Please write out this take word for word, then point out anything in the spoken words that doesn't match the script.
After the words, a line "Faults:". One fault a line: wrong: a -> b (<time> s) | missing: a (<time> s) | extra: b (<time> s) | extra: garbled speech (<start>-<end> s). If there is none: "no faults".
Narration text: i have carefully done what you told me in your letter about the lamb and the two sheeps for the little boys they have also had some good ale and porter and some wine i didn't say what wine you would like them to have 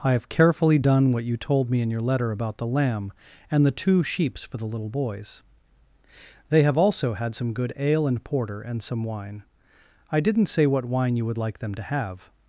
i have carefully done what you told me in your letter about the lamb and the two sheeps for the little boys they have also had some good ale and porter and some wine i didn't say what wine you would like them to have
Faults:
no faults